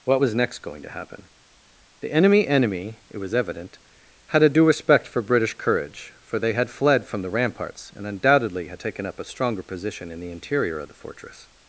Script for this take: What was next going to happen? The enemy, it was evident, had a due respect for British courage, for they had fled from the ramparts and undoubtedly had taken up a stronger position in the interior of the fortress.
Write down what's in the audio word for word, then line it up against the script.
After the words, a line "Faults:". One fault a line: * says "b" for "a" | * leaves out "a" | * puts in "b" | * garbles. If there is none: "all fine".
What was next going to happen? The enemy enemy, it was evident, had a due respect for British courage, for they had fled from the ramparts and undoubtedly had taken up a stronger position in the interior of the fortress.
Faults:
* puts in "enemy"